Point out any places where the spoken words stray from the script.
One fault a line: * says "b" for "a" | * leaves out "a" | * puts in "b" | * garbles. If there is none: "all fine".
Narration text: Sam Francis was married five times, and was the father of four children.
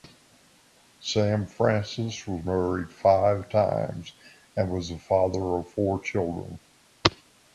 all fine